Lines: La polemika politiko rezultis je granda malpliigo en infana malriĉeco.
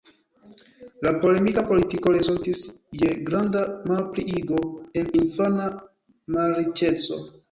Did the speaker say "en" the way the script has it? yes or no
yes